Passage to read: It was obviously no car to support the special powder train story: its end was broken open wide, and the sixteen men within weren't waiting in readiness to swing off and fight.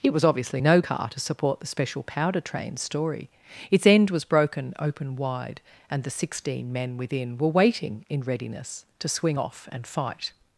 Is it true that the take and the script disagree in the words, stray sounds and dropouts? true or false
true